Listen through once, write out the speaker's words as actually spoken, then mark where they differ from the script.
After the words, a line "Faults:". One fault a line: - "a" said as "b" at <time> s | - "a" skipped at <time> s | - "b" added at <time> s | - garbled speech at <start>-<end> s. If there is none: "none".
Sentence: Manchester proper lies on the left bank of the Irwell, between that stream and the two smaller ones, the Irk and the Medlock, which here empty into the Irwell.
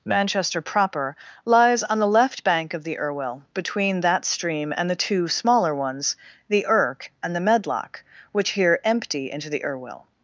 Manchester proper lies on the left bank of the Irwell, between that stream and the two smaller ones, the Irk and the Medlock, which here empty into the Irwell.
Faults:
none